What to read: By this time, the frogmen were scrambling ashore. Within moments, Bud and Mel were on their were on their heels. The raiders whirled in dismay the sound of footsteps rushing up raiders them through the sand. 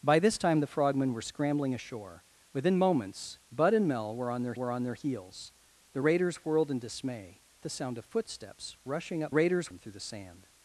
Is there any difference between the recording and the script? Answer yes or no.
no